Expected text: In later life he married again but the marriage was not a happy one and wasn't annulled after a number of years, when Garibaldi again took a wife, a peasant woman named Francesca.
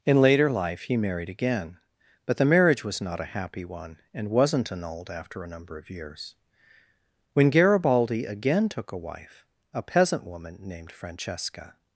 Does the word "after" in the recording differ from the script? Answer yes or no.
no